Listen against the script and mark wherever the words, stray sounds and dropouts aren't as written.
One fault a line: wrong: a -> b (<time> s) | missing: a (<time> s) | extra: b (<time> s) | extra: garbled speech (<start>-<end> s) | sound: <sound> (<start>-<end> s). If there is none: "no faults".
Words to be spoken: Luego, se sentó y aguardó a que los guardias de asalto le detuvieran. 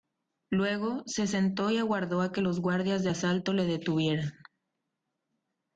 no faults